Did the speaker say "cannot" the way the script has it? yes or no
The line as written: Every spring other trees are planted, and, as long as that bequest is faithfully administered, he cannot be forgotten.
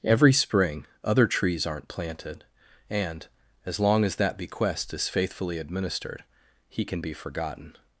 no